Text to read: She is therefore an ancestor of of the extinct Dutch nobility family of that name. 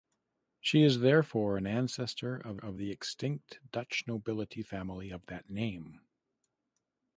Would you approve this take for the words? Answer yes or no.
yes